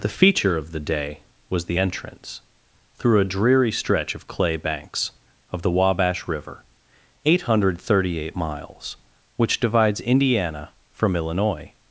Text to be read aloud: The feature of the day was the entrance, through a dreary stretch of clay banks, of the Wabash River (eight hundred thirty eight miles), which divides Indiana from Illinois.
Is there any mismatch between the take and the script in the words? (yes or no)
no